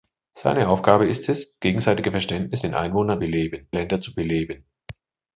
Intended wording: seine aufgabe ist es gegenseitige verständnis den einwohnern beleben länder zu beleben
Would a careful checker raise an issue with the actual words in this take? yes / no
no